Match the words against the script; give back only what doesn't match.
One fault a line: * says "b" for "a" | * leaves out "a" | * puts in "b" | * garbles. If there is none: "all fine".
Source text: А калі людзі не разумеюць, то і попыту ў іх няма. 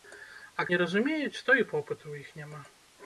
* leaves out "калі людзі"